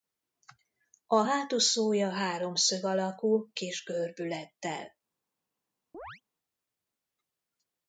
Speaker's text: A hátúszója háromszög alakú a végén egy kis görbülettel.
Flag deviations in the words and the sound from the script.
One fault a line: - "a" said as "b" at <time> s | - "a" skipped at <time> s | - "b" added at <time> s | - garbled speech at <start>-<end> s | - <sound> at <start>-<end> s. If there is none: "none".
- "a végén egy" skipped at 3.5 s
- chirp at 5.9-6.2 s